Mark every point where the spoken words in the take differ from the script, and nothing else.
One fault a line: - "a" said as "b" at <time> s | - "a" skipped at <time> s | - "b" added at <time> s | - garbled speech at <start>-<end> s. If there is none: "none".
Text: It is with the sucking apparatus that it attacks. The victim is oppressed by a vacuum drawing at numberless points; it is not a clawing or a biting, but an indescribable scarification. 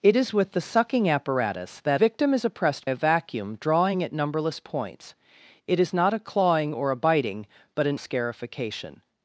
- "it attacks The" skipped at 2.0 s
- "by" skipped at 2.9 s
- "indescribable" skipped at 8.0 s